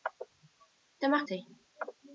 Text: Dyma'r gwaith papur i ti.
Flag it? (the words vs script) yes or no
yes